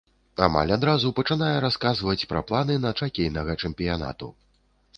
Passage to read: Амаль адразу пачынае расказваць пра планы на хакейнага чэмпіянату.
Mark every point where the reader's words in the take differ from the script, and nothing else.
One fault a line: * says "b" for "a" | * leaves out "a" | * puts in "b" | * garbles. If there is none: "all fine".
all fine